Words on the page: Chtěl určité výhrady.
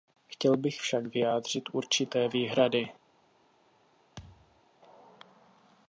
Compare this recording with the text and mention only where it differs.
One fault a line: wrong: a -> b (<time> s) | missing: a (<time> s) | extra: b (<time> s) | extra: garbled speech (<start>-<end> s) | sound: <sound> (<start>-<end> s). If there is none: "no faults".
extra: bych však vyjádřit (0.6 s)
sound: thud (4.2-4.6 s)